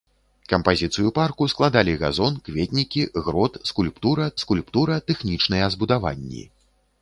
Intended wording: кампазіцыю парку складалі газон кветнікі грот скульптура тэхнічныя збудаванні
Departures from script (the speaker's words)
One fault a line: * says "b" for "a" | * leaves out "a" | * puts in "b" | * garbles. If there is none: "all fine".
* puts in "скульптура"